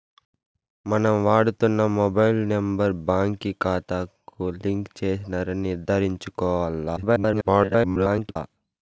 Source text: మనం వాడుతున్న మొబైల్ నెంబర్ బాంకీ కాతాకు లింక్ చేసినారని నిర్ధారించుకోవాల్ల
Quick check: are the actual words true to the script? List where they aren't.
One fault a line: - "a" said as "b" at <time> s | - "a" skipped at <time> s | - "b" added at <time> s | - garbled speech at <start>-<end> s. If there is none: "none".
- garbled speech at 7.0-8.4 s